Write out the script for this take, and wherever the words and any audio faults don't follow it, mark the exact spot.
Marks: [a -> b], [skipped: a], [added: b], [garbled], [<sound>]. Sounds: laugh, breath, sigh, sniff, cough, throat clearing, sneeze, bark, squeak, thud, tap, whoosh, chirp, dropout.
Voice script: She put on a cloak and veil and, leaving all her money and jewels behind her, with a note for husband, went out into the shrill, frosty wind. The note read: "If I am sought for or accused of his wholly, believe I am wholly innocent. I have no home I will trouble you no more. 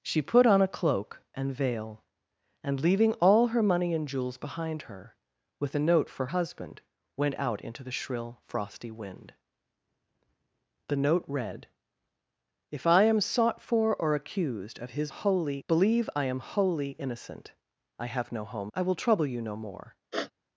She put on a cloak and veil and, leaving all her money and jewels behind her, with a note for husband, went out into the shrill, frosty wind. The note read: "If I am sought for or accused of his wholly, believe I am wholly innocent. I have no home I will trouble you no more. [sniff]